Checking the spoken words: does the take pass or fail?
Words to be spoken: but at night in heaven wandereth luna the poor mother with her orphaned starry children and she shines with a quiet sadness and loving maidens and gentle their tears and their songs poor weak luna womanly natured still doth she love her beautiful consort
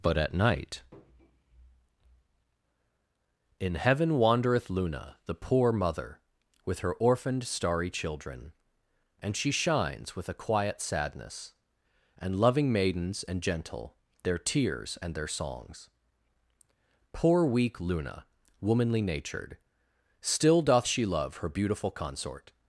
pass